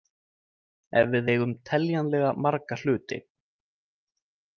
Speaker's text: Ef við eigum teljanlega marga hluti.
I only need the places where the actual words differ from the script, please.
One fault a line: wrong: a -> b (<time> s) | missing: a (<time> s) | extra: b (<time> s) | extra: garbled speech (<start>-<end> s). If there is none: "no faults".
no faults